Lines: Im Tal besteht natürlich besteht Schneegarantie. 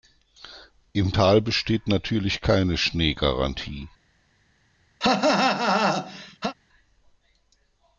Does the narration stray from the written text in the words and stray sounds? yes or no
yes